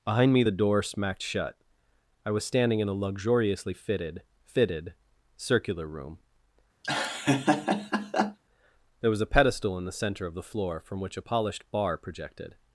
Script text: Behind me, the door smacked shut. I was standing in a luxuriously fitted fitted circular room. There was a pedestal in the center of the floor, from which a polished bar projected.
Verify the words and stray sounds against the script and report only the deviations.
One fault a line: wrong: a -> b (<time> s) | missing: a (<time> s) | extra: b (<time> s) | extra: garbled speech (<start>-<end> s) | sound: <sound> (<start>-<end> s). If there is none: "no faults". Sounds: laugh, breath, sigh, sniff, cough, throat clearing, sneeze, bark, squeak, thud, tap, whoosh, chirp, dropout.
sound: laugh (6.8-8.4 s)